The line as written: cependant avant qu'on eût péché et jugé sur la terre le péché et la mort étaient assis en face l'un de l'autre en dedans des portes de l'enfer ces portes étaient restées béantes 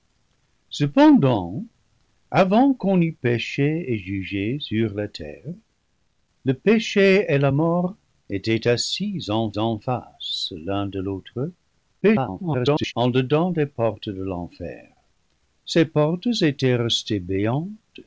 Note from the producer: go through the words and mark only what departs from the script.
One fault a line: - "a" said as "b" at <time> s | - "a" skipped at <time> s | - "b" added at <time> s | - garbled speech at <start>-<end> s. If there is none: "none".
- "en" added at 9.6 s
- garbled speech at 12.0-12.9 s